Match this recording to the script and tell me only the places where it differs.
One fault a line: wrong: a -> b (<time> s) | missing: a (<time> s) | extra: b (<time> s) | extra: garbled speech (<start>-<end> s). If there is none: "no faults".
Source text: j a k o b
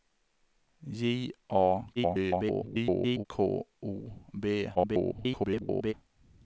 extra: garbled speech (2.0-3.3 s)
extra: garbled speech (4.7-5.9 s)